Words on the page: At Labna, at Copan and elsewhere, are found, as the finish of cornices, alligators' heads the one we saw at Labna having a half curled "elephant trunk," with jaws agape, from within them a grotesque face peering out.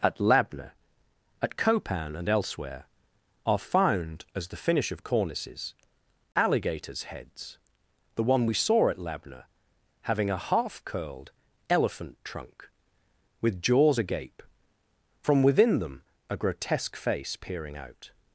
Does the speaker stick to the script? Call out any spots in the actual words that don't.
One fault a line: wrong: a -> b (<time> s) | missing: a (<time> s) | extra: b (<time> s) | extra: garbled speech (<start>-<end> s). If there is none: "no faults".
no faults